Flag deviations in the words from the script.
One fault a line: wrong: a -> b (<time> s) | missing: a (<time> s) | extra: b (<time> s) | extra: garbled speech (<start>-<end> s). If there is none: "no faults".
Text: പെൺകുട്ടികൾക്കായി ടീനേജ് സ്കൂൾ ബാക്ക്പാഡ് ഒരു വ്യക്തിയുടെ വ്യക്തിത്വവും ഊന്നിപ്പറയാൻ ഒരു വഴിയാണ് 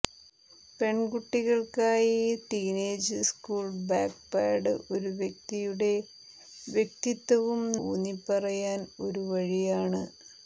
no faults